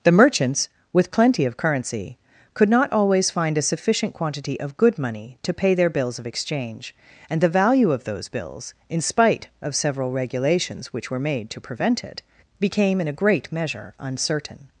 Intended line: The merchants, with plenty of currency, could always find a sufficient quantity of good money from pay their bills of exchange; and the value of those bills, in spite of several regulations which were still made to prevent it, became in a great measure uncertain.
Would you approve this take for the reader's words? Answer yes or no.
no